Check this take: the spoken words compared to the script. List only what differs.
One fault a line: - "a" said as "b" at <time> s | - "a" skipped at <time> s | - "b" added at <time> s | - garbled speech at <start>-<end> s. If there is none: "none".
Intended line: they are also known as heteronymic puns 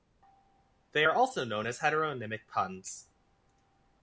none